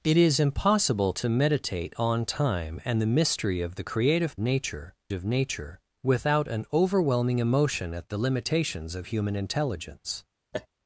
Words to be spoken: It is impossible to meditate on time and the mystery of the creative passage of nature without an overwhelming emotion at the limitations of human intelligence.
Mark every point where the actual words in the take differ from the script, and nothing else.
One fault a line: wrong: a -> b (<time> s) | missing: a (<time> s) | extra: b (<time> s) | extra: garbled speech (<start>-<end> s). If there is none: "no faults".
wrong: passage -> nature (4.4 s)